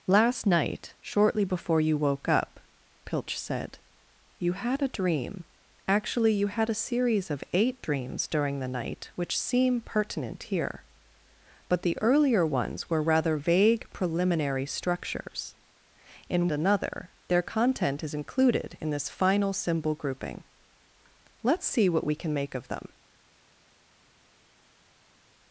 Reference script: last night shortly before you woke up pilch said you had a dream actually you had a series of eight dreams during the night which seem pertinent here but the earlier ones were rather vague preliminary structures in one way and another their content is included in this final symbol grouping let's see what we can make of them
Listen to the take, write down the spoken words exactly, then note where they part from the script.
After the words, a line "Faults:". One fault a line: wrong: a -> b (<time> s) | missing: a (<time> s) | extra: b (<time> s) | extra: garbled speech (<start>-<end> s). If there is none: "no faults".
last night shortly before you woke up pilch said you had a dream actually you had a series of eight dreams during the night which seem pertinent here but the earlier ones were rather vague preliminary structures in another their content is included in this final symbol grouping let's see what we can make of them
Faults:
missing: one way and (16.5 s)